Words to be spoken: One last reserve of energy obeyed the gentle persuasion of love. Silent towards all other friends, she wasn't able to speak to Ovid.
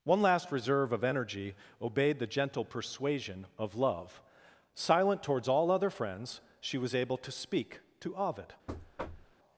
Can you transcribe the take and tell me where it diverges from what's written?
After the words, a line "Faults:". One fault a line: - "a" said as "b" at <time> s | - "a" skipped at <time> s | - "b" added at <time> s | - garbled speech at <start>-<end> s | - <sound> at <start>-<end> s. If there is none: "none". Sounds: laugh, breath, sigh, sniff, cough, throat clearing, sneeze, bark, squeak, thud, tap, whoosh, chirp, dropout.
One last reserve of energy obeyed the gentle persuasion of love. Silent towards all other friends, she was able to speak to Ovid.
Faults:
- "wasn't" said as "was" at 6.8 s
- thud at 8.7-9.4 s